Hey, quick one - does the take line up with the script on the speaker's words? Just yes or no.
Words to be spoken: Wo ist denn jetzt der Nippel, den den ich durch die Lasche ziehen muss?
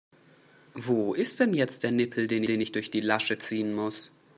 yes